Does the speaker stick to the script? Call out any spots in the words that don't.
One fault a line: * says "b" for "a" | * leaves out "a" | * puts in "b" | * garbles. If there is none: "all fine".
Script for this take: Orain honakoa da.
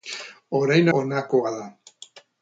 all fine